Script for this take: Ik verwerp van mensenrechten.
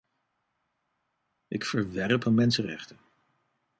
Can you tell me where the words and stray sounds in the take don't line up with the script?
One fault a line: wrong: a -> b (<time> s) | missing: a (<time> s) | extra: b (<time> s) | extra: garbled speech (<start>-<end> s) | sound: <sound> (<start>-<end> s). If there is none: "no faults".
no faults